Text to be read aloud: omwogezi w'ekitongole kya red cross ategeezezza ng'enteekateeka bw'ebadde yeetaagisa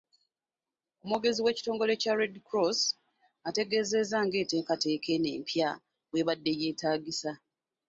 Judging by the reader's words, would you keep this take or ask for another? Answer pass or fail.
fail